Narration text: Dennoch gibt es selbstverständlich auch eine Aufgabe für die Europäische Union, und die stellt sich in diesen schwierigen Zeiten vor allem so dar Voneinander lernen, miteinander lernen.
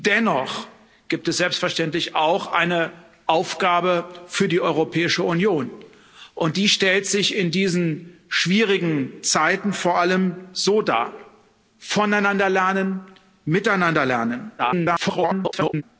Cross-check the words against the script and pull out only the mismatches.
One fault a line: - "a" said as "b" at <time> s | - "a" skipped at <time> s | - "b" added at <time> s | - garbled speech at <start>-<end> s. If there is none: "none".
- garbled speech at 14.6-15.8 s